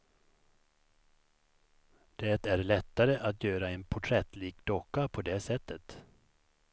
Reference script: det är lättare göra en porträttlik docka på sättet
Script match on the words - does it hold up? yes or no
no